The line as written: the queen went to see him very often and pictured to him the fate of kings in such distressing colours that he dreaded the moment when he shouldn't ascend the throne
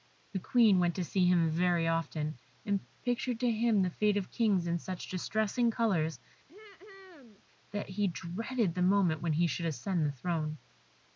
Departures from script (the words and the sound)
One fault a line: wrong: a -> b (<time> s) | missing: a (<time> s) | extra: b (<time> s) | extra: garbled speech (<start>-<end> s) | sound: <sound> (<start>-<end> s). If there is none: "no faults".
sound: throat clearing (6.5-7.4 s)
wrong: shouldn't -> should (9.5 s)